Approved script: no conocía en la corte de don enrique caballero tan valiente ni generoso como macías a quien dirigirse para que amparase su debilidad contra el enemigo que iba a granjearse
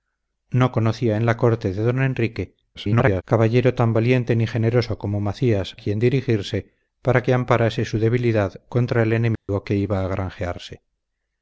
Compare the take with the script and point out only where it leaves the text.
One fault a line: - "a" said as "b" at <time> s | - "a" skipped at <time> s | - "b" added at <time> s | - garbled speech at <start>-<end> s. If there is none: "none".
- garbled speech at 2.7-3.2 s
- "a" skipped at 5.8 s